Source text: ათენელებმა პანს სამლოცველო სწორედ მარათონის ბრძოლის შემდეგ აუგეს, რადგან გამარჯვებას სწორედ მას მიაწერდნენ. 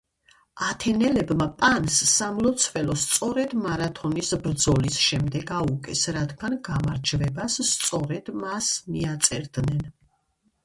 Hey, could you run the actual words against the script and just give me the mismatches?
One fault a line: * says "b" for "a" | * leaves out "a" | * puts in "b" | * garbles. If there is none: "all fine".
all fine